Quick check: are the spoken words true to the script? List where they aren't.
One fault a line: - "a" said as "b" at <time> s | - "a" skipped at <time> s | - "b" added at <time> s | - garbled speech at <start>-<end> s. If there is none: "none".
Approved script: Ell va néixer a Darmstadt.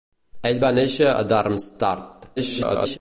- garbled speech at 2.4-3.0 s